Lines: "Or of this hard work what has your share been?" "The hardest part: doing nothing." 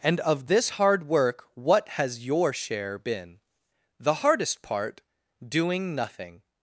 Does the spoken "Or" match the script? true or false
false